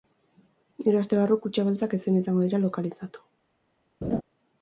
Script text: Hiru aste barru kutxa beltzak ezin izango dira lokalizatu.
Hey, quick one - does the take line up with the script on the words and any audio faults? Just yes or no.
no